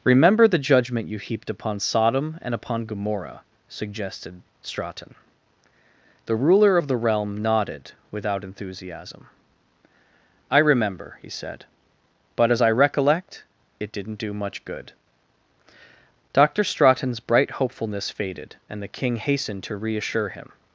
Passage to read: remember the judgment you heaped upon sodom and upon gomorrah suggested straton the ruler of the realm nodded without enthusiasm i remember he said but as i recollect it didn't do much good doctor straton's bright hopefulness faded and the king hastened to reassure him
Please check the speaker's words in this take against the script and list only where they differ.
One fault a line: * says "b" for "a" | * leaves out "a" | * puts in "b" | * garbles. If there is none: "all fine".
all fine